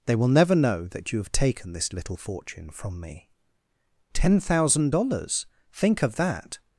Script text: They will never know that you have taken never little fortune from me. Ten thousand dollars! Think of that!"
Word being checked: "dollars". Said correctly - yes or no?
yes